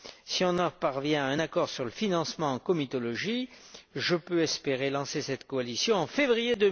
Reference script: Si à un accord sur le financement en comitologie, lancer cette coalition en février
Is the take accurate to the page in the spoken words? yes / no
no